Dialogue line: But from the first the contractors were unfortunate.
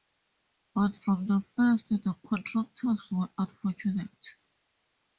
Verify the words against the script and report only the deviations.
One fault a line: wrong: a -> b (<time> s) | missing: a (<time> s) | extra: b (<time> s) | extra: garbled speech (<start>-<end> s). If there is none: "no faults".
no faults